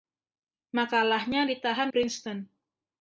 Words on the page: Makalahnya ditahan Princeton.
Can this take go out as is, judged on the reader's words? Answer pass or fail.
pass